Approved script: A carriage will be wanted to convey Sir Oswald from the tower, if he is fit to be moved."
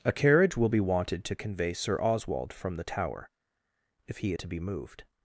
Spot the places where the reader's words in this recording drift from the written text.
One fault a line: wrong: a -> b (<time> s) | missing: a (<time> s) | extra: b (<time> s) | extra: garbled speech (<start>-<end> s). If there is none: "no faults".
missing: is fit (4.3 s)